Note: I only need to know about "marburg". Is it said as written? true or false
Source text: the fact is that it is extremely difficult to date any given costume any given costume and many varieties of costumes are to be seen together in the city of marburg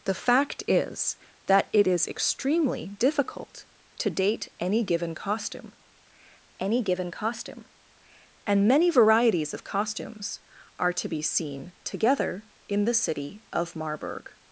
true